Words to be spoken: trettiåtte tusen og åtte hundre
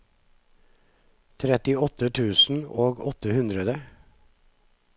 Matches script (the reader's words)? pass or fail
pass